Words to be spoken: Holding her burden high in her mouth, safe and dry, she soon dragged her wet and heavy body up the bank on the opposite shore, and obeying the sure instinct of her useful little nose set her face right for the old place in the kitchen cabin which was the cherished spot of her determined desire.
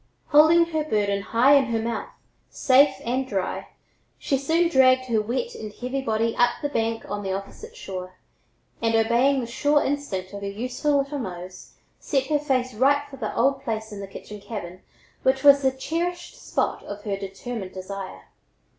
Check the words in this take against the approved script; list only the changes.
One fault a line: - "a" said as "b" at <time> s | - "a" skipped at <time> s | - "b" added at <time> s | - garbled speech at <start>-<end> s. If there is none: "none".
none